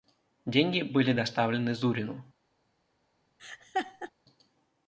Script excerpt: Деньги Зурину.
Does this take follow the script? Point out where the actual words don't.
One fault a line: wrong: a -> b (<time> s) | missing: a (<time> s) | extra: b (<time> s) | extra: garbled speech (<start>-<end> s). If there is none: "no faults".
extra: были доставлены (0.8 s)